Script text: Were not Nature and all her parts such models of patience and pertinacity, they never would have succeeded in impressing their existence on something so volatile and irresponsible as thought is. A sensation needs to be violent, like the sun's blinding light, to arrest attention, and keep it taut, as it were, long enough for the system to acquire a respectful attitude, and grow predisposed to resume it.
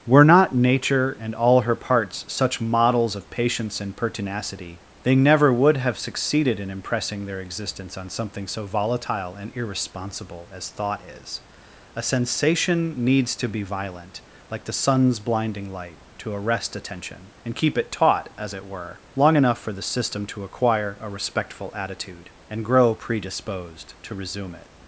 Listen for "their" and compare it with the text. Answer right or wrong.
right